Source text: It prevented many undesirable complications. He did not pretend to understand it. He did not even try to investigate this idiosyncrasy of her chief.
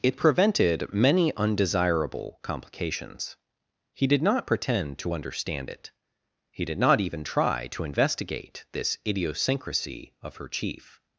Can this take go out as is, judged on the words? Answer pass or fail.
pass